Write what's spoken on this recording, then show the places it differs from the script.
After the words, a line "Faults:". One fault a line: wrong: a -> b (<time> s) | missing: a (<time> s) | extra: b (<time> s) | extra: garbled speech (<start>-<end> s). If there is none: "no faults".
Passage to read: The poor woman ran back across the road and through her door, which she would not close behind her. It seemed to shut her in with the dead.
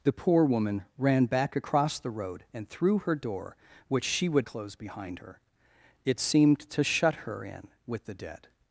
The poor woman ran back across the road and through her door, which she would close behind her. It seemed to shut her in with the dead.
Faults:
missing: not (4.5 s)